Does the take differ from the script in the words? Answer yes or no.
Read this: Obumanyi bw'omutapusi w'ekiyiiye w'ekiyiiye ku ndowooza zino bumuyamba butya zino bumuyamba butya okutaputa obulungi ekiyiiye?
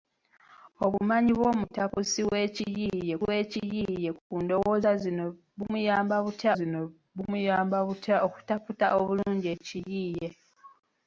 no